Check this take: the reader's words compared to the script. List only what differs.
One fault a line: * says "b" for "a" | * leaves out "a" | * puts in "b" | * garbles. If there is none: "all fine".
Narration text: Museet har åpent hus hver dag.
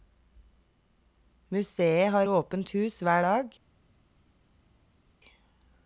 all fine